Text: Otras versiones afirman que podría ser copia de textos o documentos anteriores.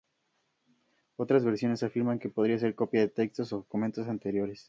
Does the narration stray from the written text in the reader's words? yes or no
no